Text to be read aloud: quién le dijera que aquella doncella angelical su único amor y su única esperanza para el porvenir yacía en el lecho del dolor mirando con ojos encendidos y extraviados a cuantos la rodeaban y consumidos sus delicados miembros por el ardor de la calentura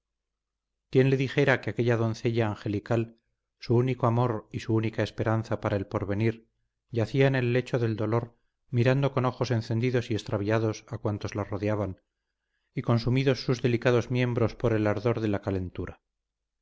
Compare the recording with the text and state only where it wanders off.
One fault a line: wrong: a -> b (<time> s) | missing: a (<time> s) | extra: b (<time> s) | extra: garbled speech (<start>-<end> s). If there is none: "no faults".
no faults